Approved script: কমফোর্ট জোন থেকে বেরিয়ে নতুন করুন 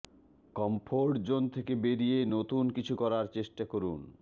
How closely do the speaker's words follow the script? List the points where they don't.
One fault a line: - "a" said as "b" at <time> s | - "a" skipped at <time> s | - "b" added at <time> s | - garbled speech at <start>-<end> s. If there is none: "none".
- "কিছু করার চেষ্টা" added at 2.8 s